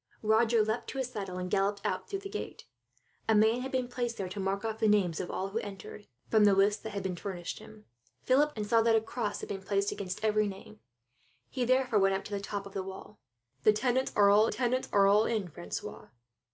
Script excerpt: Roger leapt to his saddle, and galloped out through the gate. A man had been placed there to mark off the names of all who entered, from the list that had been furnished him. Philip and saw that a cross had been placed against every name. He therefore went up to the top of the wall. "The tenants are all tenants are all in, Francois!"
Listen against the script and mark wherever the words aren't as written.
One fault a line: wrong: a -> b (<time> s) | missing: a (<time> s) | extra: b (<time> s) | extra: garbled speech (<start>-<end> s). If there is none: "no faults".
no faults